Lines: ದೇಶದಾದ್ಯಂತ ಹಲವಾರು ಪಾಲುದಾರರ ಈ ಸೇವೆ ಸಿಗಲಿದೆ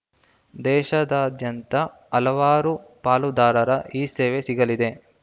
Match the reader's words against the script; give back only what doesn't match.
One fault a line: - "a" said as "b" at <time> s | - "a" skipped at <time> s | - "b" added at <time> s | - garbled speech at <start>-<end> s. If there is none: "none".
none